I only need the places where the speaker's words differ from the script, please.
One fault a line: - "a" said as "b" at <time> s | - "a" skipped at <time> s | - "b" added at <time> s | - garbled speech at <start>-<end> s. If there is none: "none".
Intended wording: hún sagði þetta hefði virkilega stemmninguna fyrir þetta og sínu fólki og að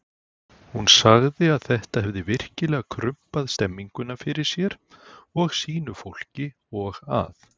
- "að" added at 1.6 s
- "krumpað" added at 3.0 s
- "þetta" said as "sér" at 4.5 s